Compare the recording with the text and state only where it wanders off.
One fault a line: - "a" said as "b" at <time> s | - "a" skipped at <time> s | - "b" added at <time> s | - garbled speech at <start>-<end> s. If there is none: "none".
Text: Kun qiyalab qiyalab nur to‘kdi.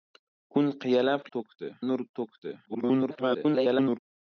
- "qiyalab" said as "to‘kdi" at 1.4 s
- garbled speech at 2.7-4.0 s